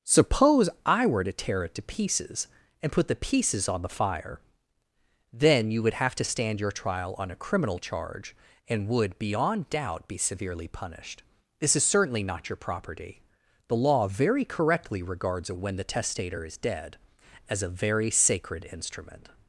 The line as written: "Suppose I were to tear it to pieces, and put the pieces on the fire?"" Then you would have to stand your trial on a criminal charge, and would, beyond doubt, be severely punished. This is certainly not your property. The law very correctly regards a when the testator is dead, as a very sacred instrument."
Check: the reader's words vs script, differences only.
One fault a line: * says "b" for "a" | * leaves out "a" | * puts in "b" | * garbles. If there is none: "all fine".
all fine